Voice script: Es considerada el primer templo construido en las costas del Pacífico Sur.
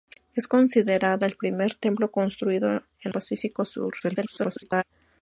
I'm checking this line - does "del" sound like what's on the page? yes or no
no